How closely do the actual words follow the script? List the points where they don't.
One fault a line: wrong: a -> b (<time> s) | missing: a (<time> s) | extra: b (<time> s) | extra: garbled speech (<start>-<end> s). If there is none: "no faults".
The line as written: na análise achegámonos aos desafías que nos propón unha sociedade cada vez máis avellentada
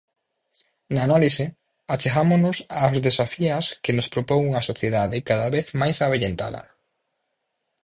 no faults